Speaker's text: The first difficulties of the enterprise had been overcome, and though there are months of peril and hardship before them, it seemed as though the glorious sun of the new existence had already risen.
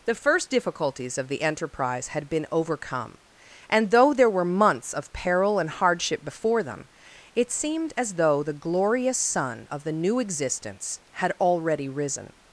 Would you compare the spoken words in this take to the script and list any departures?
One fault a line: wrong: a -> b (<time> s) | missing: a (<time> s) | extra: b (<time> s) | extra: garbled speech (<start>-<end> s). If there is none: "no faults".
wrong: are -> were (4.3 s)